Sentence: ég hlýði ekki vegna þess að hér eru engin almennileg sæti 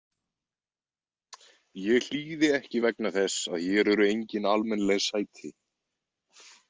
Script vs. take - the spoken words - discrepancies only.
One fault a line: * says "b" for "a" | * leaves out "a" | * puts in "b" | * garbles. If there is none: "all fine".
all fine